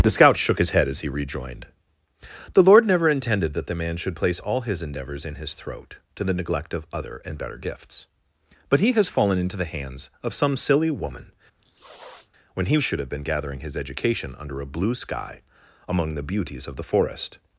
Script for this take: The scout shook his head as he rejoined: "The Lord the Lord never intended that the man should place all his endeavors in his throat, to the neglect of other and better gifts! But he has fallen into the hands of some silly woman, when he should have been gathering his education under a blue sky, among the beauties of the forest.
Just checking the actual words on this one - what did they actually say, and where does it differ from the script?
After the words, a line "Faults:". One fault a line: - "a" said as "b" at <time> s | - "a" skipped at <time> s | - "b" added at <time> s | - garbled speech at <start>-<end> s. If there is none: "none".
The scout shook his head as he rejoined: "The Lord never intended that the man should place all his endeavors in his throat, to the neglect of other and better gifts! But he has fallen into the hands of some silly woman, when he should have been gathering his education under a blue sky, among the beauties of the forest.
Faults:
- "the Lord" skipped at 2.9 s